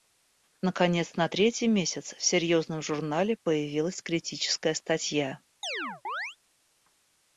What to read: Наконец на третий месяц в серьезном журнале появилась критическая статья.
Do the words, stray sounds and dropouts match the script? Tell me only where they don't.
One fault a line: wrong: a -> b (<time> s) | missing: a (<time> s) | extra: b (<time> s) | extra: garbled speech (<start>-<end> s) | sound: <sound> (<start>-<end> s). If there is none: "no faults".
sound: chirp (5.6-6.4 s)